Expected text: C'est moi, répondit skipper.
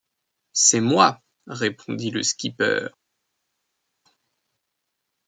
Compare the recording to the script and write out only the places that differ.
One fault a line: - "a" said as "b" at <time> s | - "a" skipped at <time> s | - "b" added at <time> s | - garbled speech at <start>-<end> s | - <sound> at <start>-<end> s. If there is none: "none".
- "le" added at 2.1 s